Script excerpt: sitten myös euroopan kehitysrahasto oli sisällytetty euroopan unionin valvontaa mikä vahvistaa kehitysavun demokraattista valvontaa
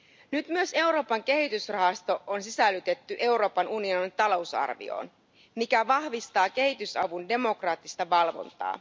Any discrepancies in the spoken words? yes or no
yes